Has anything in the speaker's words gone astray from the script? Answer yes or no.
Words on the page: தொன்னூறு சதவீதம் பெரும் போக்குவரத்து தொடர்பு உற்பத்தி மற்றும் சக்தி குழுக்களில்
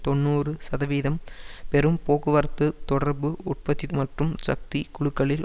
no